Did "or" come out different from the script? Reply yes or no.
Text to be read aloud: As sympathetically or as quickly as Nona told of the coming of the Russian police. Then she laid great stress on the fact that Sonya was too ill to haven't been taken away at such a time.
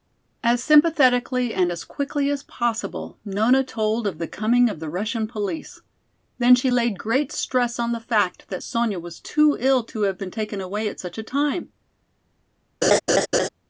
yes